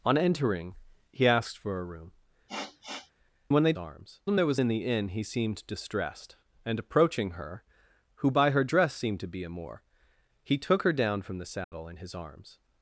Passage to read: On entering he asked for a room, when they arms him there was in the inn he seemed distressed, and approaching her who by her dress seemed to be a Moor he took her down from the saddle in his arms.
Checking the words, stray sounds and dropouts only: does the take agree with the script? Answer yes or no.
no